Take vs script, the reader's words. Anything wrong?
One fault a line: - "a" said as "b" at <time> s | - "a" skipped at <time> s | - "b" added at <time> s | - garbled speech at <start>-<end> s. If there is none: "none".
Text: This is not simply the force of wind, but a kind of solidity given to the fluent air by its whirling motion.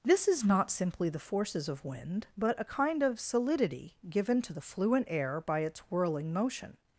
- "force" said as "forces" at 1.2 s